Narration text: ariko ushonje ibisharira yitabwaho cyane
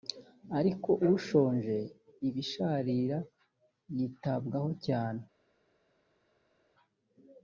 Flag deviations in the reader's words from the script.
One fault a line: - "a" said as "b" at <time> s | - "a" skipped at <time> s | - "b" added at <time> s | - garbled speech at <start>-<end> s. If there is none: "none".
none